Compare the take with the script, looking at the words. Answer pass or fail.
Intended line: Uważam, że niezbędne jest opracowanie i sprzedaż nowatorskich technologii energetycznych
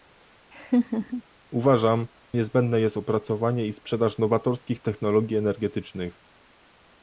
fail